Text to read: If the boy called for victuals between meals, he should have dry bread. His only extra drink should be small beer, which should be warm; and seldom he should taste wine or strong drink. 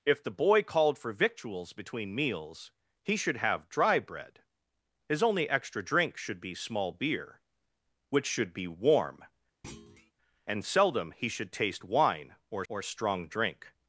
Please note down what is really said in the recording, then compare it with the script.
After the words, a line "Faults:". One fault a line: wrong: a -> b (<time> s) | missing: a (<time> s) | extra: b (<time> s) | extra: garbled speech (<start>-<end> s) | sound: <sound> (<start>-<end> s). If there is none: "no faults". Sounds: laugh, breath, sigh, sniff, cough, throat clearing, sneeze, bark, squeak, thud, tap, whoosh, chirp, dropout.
If the boy called for victuals between meals, he should have dry bread. His only extra drink should be small beer, which should be warm; and seldom he should taste wine or or strong drink.
Faults:
sound: thud (9.6-10.1 s)
extra: or (12.7 s)